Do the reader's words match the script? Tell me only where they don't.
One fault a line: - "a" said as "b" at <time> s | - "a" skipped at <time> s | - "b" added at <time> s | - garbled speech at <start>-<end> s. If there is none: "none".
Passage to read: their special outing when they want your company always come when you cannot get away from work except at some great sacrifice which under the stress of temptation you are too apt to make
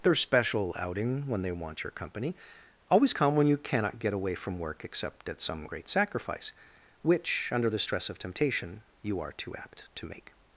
none